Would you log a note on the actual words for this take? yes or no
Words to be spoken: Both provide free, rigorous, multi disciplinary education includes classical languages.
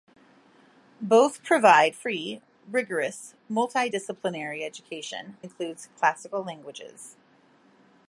no